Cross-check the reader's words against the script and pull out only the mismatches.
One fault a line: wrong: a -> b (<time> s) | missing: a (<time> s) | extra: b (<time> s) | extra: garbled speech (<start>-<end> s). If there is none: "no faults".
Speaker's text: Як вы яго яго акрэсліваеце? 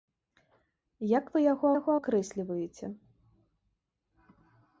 no faults